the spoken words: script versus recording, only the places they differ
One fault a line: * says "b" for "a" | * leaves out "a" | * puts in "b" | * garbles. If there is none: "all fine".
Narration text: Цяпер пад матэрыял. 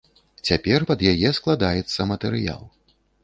* puts in "яе складаецца"